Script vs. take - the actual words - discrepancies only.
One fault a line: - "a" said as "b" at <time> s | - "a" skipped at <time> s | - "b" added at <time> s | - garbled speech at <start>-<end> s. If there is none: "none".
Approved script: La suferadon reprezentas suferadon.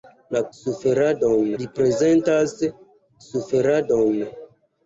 none